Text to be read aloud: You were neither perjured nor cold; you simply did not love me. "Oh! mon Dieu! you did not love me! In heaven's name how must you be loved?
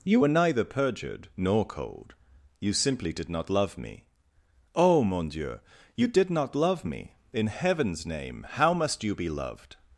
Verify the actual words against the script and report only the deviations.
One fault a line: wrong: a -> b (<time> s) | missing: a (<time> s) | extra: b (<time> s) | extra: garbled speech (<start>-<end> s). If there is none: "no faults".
no faults